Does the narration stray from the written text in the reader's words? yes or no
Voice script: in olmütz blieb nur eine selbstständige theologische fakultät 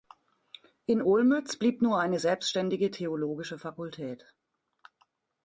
no